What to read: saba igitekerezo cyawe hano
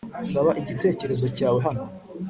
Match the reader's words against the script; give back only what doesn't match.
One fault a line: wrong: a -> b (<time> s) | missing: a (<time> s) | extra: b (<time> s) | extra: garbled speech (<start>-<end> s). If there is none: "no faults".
no faults